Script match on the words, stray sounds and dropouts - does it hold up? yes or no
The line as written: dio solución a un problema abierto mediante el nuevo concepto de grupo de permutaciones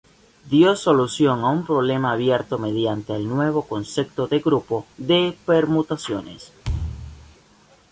no